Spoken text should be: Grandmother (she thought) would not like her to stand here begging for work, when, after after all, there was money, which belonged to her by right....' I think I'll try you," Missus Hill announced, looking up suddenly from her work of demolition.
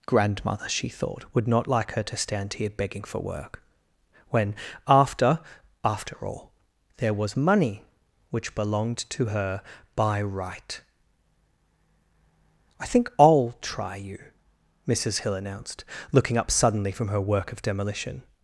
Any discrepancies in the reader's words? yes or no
no